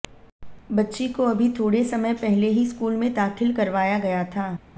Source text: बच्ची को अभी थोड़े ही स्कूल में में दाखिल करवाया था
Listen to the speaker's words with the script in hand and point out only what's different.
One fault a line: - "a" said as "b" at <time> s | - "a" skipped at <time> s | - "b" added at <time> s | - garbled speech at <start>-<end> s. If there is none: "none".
- "समय पहले" added at 1.8 s
- "में" skipped at 3.1 s
- "गया" added at 4.0 s